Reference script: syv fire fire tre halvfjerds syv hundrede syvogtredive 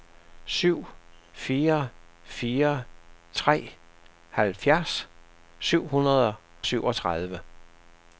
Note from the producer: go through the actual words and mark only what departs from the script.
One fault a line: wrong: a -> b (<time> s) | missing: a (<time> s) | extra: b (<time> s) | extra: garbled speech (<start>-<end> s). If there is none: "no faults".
no faults